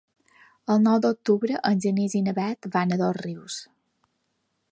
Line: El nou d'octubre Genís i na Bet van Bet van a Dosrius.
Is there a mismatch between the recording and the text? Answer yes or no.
yes